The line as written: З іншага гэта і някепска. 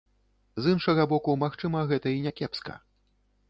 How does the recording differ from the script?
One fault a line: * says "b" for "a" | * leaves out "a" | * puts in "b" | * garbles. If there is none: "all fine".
* puts in "боку магчыма"